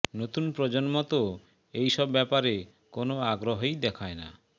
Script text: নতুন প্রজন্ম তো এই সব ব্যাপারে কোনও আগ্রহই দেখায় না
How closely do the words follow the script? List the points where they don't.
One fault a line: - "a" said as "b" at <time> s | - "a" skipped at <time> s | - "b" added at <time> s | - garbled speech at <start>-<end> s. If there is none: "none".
none